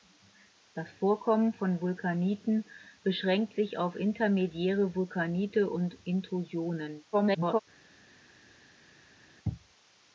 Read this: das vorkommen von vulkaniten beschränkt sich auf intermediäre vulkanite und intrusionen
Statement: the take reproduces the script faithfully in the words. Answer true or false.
false